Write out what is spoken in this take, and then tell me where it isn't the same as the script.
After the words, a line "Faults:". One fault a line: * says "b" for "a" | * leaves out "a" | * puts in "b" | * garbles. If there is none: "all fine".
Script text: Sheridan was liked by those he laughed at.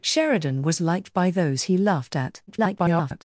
Sheridan was liked by those he laughed at. [garbled]
Faults:
* garbles